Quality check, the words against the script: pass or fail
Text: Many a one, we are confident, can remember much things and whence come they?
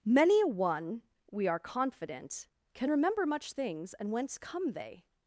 pass